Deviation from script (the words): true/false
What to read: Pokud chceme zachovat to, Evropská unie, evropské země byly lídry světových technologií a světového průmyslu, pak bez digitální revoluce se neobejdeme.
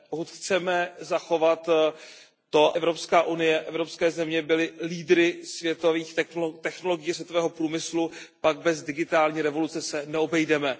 false